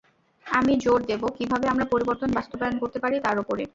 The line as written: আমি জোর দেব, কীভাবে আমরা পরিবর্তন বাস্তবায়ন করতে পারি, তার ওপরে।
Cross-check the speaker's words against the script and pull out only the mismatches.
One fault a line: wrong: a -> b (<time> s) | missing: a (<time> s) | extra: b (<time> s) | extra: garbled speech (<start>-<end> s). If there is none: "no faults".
no faults